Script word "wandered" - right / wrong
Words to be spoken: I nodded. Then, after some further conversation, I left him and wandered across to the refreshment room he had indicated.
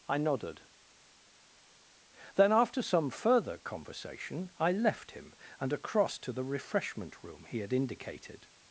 wrong